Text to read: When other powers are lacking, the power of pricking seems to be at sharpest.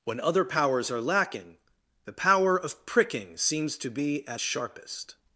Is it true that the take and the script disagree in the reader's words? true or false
false